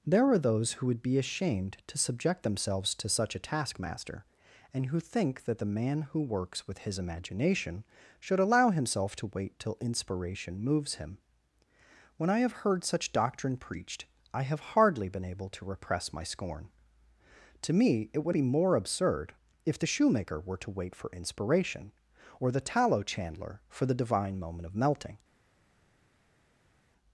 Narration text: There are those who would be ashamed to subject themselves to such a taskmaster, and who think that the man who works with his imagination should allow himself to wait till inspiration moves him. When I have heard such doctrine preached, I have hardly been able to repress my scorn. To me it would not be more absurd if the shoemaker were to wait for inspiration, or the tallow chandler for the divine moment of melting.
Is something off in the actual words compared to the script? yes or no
yes